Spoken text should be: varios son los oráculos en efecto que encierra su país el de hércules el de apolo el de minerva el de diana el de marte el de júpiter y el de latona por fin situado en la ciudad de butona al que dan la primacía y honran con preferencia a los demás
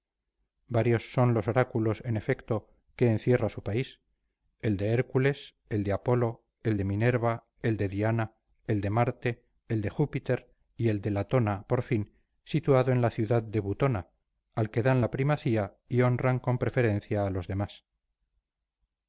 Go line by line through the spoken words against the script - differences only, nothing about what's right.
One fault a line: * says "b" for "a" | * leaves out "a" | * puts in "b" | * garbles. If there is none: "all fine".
all fine